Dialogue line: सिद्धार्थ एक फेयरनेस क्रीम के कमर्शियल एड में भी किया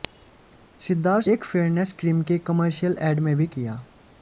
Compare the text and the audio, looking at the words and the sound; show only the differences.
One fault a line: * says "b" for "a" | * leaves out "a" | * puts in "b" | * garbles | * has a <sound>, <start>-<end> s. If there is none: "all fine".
all fine